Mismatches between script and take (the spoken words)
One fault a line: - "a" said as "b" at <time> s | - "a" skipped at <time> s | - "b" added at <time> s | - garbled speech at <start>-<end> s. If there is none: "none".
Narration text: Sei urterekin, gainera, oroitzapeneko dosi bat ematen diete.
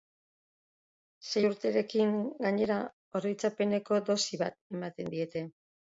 none